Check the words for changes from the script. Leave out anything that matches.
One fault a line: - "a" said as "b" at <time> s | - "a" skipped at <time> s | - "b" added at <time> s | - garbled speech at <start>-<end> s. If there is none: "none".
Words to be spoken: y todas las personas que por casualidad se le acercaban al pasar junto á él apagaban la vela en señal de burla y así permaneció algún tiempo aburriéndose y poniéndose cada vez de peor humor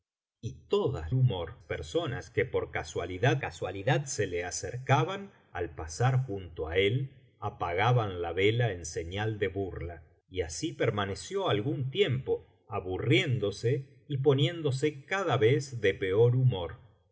- "las" said as "humor" at 1.1 s
- "casualidad" added at 3.4 s